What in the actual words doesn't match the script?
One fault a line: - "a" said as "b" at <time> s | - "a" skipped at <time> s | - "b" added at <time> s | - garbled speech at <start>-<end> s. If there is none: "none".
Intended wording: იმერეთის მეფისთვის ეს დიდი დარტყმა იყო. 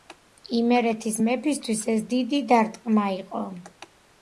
none